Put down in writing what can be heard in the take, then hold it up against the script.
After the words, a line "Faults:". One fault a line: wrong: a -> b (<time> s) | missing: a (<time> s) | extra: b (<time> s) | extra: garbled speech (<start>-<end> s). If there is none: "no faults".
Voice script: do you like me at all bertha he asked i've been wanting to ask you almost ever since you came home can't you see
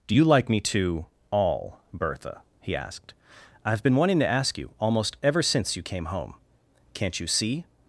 do you like me to all bertha he asked i've been wanting to ask you almost ever since you came home can't you see
Faults:
wrong: at -> to (0.6 s)